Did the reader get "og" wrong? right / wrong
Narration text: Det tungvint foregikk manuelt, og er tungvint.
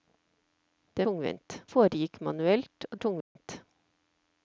right